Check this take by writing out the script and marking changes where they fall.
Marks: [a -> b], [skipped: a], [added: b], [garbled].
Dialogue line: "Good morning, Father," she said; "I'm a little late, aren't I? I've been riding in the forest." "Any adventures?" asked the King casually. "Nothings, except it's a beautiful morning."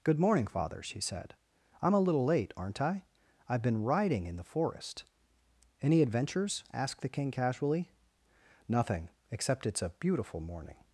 "Good morning, Father," she said; "I'm a little late, aren't I? I've been riding in the forest." "Any adventures?" asked the King casually. ["Nothings, -> Nothing] except it's a beautiful morning."